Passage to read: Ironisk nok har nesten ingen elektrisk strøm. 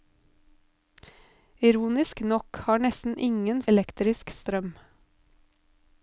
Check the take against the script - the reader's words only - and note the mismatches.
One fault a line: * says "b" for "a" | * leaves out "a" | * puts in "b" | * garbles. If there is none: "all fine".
all fine